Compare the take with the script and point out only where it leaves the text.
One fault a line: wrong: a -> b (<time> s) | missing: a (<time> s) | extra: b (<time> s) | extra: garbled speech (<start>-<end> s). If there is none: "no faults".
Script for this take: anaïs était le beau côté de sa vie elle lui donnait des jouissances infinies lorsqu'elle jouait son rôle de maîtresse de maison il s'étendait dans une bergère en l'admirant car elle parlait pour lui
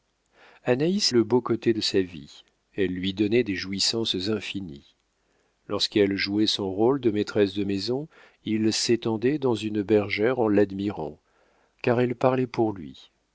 missing: était (1.1 s)